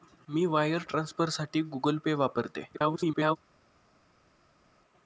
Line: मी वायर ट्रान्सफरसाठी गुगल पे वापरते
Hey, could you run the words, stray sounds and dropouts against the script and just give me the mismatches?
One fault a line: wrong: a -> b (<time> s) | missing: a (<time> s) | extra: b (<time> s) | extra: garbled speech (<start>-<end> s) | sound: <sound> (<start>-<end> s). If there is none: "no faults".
extra: garbled speech (2.7-3.4 s)